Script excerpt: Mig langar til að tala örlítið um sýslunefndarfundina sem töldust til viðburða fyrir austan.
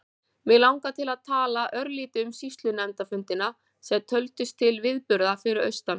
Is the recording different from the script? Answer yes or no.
no